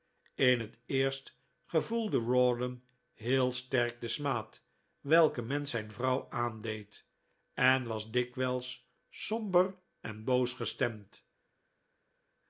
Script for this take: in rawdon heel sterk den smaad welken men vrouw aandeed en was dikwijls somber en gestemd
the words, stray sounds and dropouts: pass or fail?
fail